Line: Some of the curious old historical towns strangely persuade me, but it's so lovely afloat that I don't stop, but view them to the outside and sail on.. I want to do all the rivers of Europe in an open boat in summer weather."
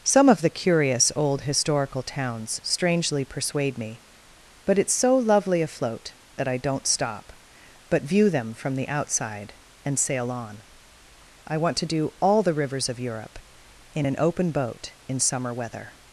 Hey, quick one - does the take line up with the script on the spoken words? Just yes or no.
no